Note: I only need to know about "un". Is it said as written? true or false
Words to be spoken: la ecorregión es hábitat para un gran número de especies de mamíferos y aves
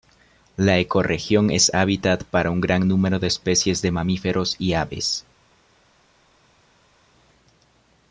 true